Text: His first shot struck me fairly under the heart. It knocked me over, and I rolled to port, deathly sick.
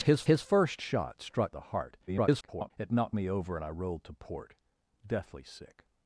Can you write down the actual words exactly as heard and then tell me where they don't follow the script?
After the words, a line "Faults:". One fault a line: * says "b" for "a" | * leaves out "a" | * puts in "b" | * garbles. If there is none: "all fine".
His his first shot struck the heart. [garbled] It knocked me over, and I rolled to port, deathly sick.
Faults:
* puts in "his"
* leaves out "me fairly under"
* garbles